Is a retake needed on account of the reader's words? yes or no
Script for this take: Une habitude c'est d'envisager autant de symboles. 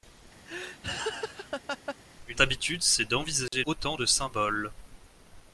no